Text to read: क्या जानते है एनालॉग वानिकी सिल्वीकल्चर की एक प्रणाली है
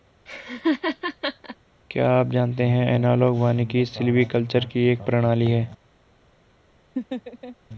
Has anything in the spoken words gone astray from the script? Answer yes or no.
yes